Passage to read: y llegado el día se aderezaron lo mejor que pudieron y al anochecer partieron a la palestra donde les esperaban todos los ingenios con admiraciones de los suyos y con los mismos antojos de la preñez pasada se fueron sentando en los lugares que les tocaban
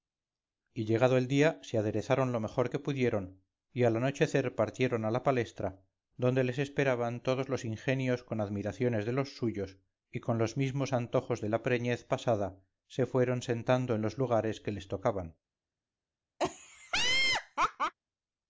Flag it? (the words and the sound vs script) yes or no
yes